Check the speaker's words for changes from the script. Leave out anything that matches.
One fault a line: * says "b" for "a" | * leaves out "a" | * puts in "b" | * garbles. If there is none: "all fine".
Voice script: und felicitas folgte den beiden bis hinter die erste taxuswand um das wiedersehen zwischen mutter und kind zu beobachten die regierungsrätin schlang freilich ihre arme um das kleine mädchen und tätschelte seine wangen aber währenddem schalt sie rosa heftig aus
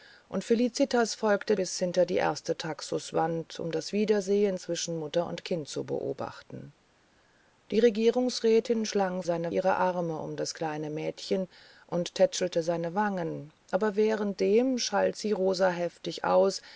* leaves out "den beiden"
* says "seine" for "freilich"